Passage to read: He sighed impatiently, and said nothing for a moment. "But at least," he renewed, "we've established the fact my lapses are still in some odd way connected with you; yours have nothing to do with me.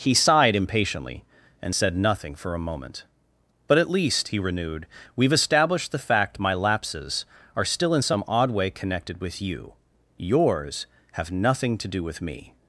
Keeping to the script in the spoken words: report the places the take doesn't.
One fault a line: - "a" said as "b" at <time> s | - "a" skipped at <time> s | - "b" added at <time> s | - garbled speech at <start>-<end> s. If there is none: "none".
none